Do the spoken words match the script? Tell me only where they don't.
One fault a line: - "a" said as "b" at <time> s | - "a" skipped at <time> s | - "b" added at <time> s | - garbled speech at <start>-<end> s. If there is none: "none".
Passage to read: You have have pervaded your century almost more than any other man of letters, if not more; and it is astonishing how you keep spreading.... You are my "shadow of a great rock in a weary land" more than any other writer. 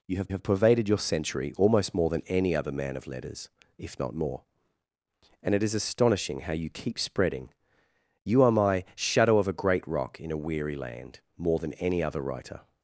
none